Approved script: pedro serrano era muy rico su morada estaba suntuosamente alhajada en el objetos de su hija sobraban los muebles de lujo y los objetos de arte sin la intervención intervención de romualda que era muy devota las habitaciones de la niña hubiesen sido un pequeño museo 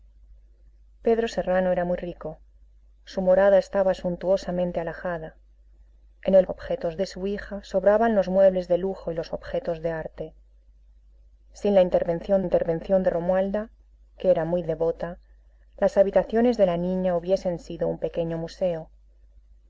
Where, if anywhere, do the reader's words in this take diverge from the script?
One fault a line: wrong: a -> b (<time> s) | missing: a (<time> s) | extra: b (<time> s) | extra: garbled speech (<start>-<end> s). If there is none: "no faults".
no faults